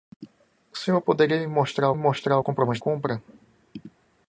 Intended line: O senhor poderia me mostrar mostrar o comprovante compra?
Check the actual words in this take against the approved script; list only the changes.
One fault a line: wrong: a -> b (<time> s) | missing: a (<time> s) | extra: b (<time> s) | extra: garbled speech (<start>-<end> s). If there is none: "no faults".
no faults